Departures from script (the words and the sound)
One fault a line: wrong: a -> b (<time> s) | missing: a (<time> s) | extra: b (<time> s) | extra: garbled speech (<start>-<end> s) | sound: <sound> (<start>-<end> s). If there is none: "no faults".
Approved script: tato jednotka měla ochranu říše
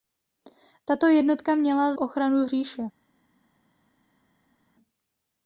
no faults